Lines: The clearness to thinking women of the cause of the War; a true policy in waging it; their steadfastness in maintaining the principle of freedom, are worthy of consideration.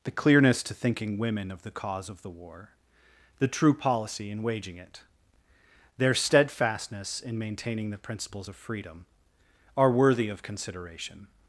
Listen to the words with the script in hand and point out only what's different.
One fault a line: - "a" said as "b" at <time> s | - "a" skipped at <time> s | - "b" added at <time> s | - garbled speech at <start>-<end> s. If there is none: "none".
- "a" said as "the" at 3.4 s
- "principle" said as "principles" at 8.0 s